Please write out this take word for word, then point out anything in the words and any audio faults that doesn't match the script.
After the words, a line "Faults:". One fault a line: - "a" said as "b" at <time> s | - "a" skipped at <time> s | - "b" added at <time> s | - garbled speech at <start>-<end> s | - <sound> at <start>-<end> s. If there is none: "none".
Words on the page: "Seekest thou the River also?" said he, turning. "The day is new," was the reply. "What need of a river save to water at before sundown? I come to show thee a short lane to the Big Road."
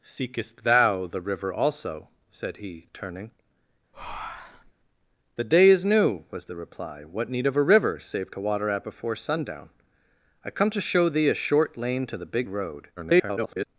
"Seekest thou the River also?" said he, turning. "The day is new," was the reply. "What need of a river save to water at before sundown? I come to show thee a short lane to the Big Road." [garbled]
Faults:
- breath at 3.9-4.7 s
- garbled speech at 13.0-13.7 s